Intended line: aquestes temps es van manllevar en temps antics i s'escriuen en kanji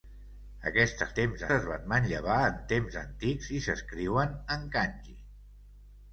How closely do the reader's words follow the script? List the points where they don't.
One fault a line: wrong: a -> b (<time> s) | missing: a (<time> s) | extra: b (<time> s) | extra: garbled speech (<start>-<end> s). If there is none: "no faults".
no faults